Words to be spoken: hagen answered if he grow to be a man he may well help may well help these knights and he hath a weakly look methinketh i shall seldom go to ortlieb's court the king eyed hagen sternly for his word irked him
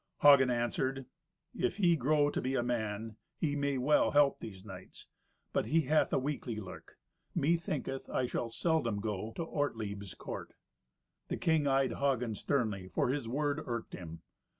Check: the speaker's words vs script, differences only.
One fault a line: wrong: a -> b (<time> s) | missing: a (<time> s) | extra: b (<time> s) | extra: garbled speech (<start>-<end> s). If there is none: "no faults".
missing: may well help (4.4 s)
wrong: and -> but (5.5 s)